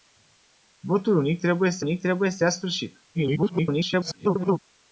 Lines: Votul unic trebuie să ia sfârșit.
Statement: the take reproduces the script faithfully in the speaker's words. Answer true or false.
false